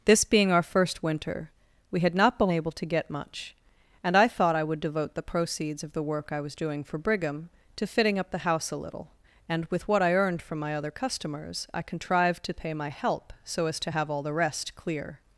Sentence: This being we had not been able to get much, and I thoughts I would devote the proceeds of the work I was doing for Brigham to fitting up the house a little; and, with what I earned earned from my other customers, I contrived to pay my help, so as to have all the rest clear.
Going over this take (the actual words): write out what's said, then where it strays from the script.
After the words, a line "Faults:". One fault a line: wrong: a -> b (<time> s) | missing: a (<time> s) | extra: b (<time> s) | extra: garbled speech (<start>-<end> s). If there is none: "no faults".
This being our first winter, we had not been able to get much, and I thought I would devote the proceeds of the work I was doing for Brigham to fitting up the house a little; and, with what I earned from my other customers, I contrived to pay my help, so as to have all the rest clear.
Faults:
extra: our first winter (0.5 s)
wrong: thoughts -> thought (4.3 s)
missing: earned (10.4 s)